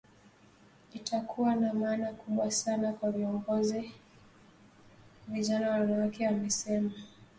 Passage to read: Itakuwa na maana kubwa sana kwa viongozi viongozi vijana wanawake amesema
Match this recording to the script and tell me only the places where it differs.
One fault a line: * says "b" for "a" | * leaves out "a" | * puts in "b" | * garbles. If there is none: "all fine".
* leaves out "viongozi"